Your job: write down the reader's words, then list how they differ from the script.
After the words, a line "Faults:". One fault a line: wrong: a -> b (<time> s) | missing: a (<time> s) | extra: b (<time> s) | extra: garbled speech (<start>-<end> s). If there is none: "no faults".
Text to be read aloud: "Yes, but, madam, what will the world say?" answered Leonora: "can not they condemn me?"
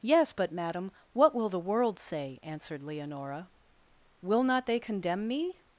"Yes, but, madam, what will the world say?" answered Leonora: "will not they condemn me?"
Faults:
wrong: can -> will (4.2 s)